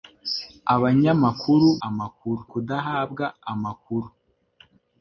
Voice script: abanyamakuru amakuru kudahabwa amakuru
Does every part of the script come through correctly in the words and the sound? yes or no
yes